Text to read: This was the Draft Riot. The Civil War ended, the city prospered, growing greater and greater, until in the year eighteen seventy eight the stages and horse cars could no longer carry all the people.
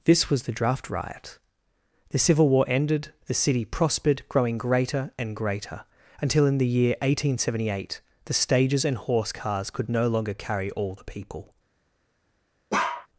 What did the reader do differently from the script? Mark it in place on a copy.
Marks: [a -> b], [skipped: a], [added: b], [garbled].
This was the Draft Riot. The Civil War ended, the city prospered, growing greater and greater, until in the year eighteen seventy eight the stages and horse cars could no longer carry all the people.